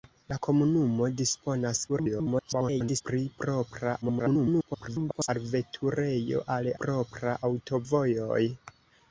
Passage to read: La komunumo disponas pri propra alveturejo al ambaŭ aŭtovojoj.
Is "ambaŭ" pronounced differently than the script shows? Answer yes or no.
yes